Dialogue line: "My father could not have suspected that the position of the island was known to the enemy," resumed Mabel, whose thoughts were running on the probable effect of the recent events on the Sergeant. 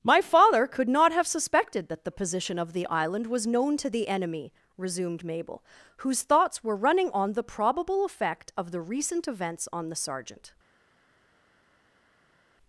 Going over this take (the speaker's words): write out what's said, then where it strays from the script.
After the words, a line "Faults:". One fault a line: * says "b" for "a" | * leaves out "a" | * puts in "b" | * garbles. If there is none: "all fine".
"My father could not have suspected that the position of the island was known to the enemy," resumed Mabel, whose thoughts were running on the probable effect of the recent events on the Sergeant.
Faults:
all fine